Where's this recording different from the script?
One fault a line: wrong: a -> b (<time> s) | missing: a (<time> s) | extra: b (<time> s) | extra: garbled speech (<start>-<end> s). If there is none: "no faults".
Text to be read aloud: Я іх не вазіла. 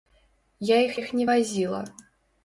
extra: іх (1.0 s)